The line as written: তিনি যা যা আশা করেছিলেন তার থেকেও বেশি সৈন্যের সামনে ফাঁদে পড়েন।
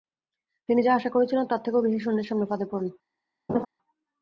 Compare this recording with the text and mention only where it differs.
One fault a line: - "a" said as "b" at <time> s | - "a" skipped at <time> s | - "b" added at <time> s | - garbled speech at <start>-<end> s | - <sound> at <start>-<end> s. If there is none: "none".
- "যা" skipped at 1.1 s
- laugh at 3.5-3.7 s